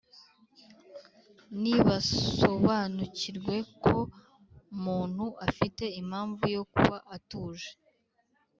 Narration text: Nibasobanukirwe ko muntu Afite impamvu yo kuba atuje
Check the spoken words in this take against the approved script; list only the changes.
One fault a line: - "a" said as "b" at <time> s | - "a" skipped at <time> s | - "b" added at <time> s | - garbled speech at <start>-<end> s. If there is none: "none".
none